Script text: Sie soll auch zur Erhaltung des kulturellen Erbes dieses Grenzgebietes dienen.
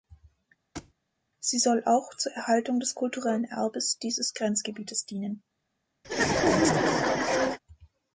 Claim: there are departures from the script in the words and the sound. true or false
true